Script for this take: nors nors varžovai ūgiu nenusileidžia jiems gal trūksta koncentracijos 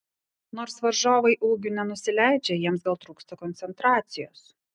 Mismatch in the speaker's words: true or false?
true